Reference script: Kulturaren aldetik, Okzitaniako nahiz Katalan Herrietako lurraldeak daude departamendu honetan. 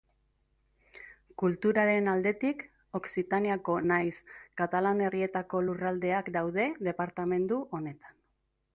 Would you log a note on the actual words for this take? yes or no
no